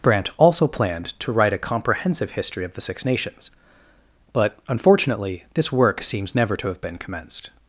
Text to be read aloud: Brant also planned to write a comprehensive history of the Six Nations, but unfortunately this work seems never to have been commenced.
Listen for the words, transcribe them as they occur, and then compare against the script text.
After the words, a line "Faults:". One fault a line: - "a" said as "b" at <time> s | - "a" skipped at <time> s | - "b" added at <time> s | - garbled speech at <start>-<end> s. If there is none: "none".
Brant also planned to write a comprehensive history of the Six Nations, but unfortunately this work seems never to have been commenced.
Faults:
none